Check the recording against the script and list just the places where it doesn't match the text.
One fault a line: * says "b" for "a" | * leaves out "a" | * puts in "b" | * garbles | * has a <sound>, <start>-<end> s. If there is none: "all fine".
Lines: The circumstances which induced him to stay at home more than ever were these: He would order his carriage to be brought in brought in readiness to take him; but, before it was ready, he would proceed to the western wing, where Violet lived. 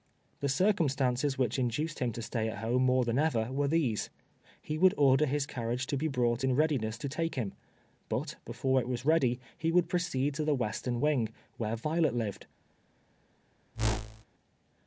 * leaves out "brought in"
* has a whoosh, 13.7-14.2 s